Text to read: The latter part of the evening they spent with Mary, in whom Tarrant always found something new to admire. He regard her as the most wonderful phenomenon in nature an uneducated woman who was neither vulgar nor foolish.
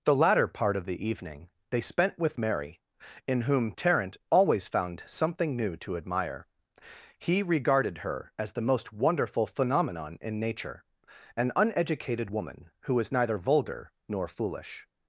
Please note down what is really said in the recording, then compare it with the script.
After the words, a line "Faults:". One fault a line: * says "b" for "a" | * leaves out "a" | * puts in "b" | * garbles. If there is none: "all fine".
The latter part of the evening they spent with Mary, in whom Tarrant always found something new to admire. He regarded her as the most wonderful phenomenon in nature an uneducated woman who was neither vulgar nor foolish.
Faults:
* says "regarded" for "regard"